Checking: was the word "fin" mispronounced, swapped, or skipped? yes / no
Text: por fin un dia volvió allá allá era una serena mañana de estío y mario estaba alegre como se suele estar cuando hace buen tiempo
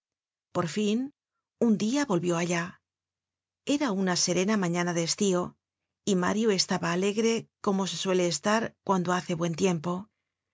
no